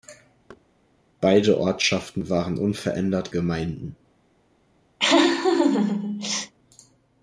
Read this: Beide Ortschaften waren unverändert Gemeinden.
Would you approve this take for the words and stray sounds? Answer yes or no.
no